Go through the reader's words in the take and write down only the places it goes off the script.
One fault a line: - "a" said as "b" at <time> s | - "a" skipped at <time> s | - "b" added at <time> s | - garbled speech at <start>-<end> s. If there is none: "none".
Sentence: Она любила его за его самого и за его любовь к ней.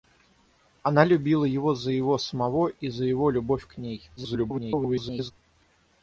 - garbled speech at 4.2-5.3 s